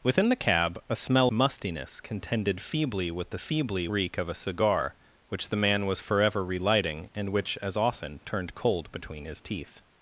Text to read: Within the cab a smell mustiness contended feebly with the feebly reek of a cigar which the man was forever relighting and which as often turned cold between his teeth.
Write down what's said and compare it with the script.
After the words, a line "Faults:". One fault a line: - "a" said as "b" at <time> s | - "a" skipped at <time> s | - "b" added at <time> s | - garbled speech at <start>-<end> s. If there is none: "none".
Within the cab a smell mustiness contended feebly with the feebly reek of a cigar which the man was forever relighting and which as often turned cold between his teeth.
Faults:
none